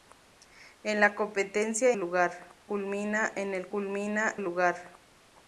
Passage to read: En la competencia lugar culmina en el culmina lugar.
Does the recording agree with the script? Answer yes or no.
yes